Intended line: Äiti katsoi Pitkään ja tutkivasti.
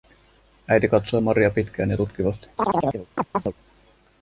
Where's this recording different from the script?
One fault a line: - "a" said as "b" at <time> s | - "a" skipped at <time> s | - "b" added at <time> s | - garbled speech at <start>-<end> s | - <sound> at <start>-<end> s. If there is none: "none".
- "Maria" added at 1.2 s
- chirp at 2.6-3.5 s